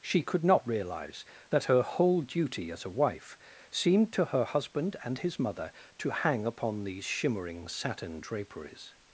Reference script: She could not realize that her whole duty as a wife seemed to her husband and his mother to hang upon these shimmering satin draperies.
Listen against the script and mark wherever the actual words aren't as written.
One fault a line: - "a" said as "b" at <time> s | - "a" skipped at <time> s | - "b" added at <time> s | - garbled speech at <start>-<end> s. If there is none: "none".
none